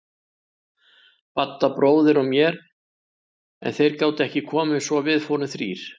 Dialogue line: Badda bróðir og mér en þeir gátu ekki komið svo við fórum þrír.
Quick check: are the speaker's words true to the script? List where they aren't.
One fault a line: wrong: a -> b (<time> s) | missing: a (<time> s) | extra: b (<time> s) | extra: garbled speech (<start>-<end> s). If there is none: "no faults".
no faults